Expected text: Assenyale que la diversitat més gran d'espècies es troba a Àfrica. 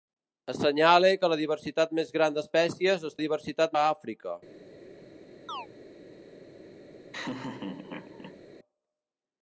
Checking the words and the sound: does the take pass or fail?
fail